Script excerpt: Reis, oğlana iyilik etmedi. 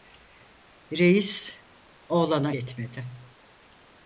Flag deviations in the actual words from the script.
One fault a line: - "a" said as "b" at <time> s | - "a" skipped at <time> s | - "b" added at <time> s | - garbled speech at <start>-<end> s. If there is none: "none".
- "iyilik" skipped at 2.5 s